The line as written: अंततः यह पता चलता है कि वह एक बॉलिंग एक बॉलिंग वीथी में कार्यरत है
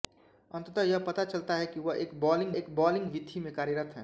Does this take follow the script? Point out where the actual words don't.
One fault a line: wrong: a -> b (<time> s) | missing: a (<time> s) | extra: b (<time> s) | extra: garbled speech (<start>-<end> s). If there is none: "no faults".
no faults